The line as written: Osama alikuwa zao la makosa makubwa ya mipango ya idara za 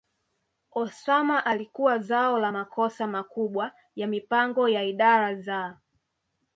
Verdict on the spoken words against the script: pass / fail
pass